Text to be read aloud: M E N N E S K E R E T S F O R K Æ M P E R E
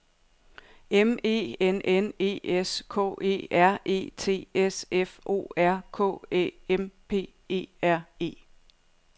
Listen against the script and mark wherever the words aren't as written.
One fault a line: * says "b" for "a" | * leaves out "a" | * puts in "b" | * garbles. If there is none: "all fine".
all fine